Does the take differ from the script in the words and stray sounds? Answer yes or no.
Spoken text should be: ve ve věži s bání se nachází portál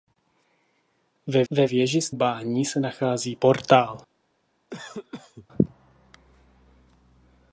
yes